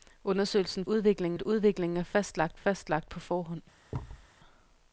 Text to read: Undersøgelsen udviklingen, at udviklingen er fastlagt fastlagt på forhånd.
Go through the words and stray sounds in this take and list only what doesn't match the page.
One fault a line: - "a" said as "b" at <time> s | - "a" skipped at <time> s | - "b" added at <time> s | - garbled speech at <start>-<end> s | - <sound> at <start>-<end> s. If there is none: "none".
- thud at 3.9-4.3 s